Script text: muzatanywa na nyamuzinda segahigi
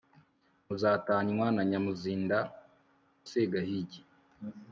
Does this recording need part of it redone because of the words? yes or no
no